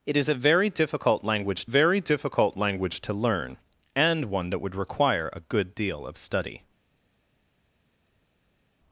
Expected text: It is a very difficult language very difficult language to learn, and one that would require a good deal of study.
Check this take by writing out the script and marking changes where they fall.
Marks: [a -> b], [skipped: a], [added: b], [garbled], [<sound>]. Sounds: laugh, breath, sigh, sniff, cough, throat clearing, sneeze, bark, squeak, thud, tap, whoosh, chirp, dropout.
It is a very difficult language very difficult language to learn, and one that would require a good deal of study.